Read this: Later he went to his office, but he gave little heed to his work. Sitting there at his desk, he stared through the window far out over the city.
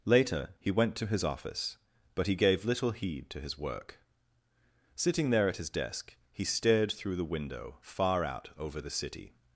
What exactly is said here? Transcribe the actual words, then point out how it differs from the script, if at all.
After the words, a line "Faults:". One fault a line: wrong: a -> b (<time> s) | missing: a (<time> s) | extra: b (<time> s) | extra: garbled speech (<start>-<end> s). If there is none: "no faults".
Later he went to his office, but he gave little heed to his work. Sitting there at his desk, he stared through the window far out over the city.
Faults:
no faults